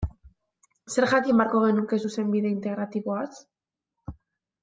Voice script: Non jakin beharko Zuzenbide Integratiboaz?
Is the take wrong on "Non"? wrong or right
wrong